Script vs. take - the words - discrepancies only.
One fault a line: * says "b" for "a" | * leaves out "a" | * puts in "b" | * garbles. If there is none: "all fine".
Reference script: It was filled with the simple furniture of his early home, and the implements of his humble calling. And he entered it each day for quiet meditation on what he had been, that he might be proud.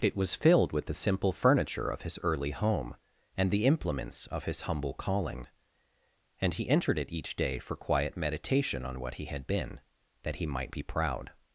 all fine